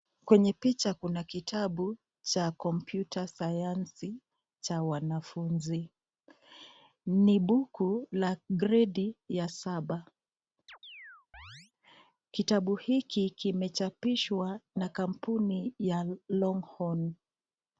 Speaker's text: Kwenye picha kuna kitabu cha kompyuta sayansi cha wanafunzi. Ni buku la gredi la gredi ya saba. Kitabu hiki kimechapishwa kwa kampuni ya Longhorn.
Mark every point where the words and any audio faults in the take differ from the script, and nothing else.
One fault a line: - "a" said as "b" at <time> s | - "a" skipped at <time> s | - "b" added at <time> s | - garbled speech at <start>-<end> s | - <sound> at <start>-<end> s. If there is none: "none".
- "la gredi" skipped at 9.2 s
- chirp at 10.7-11.7 s
- "kwa" said as "na" at 14.7 s